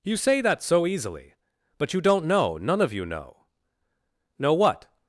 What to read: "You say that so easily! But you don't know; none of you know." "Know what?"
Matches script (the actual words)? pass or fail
pass